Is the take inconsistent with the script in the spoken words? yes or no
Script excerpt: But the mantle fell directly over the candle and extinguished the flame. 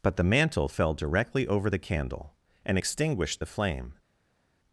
no